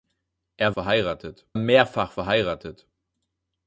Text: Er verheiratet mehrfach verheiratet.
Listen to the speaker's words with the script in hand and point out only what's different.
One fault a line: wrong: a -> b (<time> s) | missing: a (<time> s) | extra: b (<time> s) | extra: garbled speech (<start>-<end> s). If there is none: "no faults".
no faults